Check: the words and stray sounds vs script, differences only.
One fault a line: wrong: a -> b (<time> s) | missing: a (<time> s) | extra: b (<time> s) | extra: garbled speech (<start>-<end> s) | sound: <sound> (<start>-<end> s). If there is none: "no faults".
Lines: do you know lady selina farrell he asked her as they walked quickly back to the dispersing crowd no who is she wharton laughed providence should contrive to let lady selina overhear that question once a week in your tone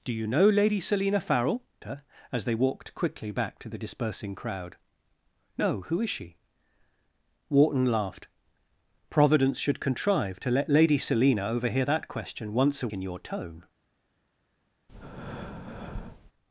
missing: he asked (1.6 s)
missing: week (12.9 s)
sound: breath (14.9-16.3 s)